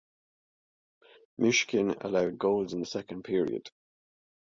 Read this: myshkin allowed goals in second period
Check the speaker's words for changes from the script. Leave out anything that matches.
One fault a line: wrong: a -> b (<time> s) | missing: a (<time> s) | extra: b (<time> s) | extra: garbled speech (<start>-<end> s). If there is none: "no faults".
no faults